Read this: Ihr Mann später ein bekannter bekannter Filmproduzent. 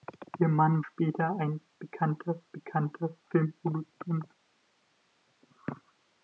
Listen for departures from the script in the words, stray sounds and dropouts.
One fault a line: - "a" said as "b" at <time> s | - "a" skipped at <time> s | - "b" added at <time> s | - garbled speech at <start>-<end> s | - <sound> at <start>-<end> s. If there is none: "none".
none